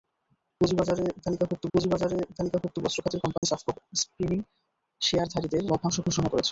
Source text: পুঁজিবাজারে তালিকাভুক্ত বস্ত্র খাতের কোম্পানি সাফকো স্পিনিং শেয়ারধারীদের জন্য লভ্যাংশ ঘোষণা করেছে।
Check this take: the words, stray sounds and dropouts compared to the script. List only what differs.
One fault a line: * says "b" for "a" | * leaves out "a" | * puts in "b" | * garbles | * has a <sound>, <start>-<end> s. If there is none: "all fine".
* puts in "পুঁজিবাজারে তালিকাভুক্ত"
* has a dropout, 3.4-3.4 s
* leaves out "জন্য"